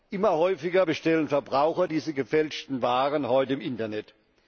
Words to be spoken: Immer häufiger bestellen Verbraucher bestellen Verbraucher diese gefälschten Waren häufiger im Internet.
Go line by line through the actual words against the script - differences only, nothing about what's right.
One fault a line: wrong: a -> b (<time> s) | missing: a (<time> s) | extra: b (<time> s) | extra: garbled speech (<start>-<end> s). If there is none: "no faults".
missing: bestellen Verbraucher (1.9 s)
wrong: häufiger -> heute (3.3 s)